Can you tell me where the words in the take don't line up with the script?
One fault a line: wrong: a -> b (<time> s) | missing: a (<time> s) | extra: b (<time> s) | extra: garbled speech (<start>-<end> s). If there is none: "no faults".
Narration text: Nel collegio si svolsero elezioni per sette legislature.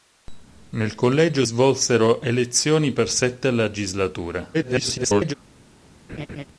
missing: si (1.4 s)
extra: garbled speech (4.5-5.3 s)